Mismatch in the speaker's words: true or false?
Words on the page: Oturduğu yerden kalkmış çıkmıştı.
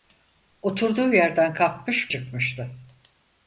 false